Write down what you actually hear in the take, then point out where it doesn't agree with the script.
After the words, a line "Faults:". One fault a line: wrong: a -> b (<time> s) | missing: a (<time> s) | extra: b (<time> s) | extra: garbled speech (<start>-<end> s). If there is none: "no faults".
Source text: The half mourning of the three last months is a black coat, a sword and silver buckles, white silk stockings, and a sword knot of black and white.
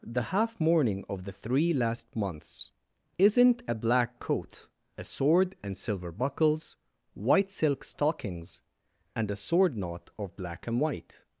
The half mourning of the three last months isn't a black coat, a sword and silver buckles, white silk stockings, and a sword knot of black and white.
Faults:
wrong: is -> isn't (3.2 s)